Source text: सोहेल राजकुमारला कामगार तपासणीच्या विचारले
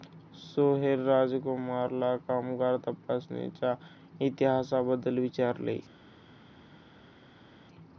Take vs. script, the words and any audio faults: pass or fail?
fail